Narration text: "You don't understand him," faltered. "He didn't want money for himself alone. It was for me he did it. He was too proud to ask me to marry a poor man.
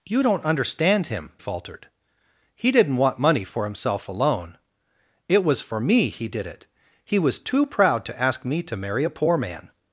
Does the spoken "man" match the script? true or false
true